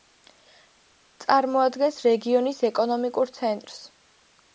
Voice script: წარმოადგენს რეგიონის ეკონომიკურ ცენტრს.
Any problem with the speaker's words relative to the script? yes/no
no